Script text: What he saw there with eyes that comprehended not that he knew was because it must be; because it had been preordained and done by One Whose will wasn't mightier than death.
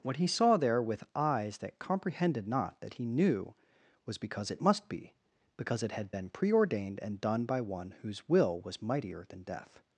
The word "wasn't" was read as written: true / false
false